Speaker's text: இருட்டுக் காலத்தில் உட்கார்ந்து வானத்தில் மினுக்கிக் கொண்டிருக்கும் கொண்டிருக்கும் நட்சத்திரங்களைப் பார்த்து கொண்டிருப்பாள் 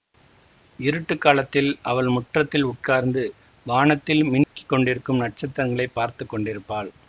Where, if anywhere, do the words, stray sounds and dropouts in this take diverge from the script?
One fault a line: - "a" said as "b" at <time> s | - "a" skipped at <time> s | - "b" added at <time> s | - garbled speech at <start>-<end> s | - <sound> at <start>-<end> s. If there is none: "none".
- "அவள் முற்றத்தில்" added at 1.8 s
- dropout at 4.4-4.6 s
- "கொண்டிருக்கும்" skipped at 5.2 s